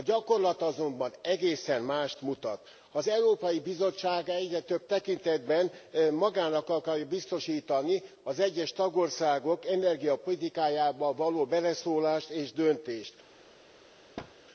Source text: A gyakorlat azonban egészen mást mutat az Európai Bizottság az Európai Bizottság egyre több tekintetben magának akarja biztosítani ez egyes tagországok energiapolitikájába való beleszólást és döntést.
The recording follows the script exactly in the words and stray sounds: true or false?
false